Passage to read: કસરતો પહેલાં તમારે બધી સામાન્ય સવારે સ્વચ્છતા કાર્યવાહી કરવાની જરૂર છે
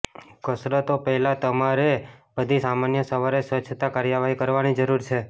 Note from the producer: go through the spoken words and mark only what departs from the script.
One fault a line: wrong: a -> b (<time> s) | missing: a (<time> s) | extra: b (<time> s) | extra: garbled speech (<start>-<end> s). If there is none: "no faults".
no faults